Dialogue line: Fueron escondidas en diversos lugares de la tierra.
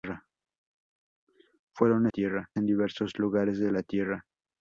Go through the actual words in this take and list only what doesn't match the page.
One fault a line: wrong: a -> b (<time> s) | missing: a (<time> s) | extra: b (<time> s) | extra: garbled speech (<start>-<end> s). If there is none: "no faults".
wrong: escondidas -> tierra (2.1 s)